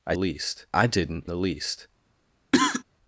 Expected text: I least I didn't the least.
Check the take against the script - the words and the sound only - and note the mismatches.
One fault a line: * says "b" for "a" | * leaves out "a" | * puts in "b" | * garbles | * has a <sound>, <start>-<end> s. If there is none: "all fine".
* has a cough, 2.5-2.8 s